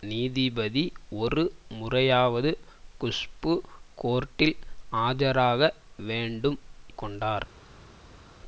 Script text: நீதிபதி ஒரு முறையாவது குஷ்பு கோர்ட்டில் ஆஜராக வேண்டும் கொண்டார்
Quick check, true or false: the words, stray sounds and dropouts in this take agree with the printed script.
true